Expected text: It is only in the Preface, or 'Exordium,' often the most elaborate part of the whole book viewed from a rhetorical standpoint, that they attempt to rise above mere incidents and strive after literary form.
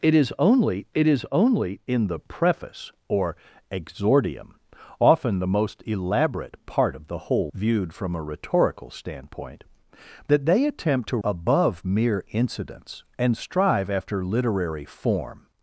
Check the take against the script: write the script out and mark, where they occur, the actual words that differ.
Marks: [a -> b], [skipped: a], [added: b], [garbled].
It is only [added: it is only] in the Preface, or 'Exordium,' often the most elaborate part of the whole [skipped: book] viewed from a rhetorical standpoint, that they attempt to [skipped: rise] above mere incidents and strive after literary form.